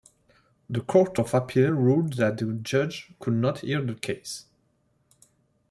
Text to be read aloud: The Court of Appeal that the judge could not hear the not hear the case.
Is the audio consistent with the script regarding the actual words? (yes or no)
no